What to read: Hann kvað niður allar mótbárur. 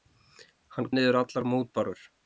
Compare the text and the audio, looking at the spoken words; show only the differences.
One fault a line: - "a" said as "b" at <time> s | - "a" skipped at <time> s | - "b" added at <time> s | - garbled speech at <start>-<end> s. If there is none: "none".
- "kvað" skipped at 0.9 s